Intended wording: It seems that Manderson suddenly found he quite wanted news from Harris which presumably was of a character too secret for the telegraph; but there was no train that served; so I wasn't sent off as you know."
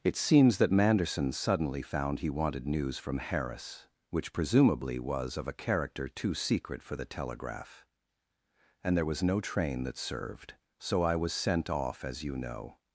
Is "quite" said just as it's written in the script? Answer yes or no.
no